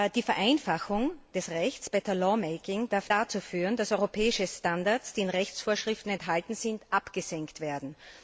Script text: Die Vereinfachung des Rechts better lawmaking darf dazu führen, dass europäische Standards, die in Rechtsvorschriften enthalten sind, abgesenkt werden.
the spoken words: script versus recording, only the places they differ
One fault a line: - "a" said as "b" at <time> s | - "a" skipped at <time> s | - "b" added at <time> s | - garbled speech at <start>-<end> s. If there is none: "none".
none